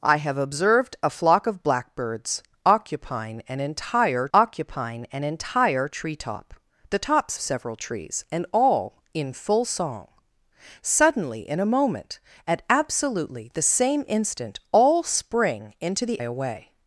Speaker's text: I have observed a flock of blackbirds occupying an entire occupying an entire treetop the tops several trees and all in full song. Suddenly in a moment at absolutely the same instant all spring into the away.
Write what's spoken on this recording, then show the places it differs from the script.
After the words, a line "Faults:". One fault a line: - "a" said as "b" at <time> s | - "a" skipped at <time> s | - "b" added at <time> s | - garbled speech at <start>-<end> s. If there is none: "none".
I have observed a flock of blackbirds occupying an entire occupying an entire treetop the tops several trees and all in full song. Suddenly in a moment at absolutely the same instant all spring into the away.
Faults:
none